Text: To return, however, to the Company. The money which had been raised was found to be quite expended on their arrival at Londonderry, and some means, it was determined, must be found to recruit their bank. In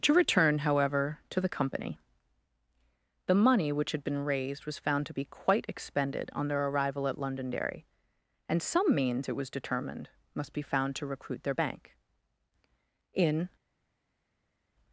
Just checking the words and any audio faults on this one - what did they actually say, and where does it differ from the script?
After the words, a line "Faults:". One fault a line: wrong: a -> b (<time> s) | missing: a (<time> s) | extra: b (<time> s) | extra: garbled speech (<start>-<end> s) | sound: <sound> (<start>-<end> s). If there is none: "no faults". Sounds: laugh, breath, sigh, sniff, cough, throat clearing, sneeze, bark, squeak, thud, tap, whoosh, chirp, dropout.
To return, however, to the Company. The money which had been raised was found to be quite expended on their arrival at Londonderry, and some means, it was determined, must be found to recruit their bank. In
Faults:
no faults